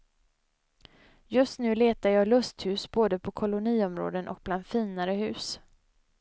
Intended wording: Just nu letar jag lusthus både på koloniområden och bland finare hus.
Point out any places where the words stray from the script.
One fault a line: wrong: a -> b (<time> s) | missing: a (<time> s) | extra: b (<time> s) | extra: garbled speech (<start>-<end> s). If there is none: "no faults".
no faults